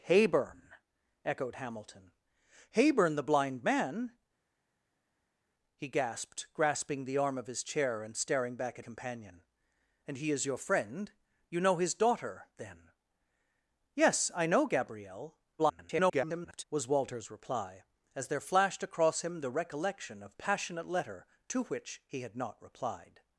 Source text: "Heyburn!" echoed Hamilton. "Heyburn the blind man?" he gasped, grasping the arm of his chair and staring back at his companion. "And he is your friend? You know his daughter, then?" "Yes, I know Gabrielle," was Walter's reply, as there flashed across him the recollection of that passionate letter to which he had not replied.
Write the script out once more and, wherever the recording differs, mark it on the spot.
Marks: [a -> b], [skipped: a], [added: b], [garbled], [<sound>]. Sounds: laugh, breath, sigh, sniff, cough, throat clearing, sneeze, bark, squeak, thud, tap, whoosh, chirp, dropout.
"Heyburn!" echoed Hamilton. "Heyburn the blind man?" he gasped, grasping the arm of his chair and staring back at [skipped: his] companion. "And he is your friend? You know his daughter, then?" "Yes, I know Gabrielle," [garbled] was Walter's reply, as there flashed across him the recollection of [skipped: that] passionate letter to which he had not replied.